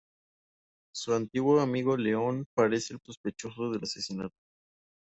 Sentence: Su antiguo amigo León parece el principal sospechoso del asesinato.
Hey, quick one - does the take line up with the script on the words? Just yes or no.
no